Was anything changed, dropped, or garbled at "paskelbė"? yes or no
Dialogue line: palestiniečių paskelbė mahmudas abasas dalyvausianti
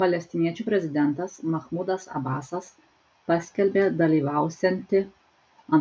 yes